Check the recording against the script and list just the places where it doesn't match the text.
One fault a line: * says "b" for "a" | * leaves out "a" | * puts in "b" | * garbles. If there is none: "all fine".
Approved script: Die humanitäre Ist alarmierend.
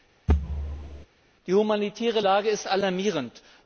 * puts in "Lage"